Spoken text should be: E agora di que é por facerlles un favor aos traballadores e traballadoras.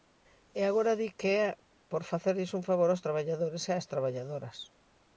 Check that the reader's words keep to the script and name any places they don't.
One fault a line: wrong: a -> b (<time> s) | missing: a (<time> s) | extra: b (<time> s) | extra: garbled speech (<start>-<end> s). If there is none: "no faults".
extra: ás (3.8 s)